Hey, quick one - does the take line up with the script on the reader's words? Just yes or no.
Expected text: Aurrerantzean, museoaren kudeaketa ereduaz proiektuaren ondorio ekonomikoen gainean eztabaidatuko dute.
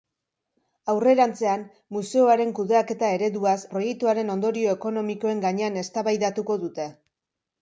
yes